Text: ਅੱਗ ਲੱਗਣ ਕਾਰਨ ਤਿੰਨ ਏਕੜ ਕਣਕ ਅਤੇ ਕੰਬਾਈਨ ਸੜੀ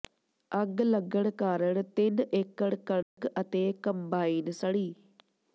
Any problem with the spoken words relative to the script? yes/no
no